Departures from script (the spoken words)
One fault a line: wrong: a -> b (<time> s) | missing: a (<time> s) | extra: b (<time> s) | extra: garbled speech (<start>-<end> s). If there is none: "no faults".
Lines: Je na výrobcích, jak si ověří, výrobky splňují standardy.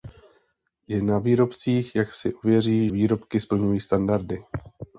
no faults